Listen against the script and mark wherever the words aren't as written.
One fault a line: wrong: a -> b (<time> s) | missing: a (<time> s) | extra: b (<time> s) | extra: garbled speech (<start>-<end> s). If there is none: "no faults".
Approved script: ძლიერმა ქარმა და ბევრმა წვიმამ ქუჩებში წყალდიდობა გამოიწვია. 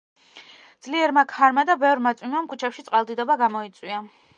no faults